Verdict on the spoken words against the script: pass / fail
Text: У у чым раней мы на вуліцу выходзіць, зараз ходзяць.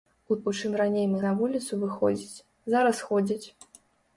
pass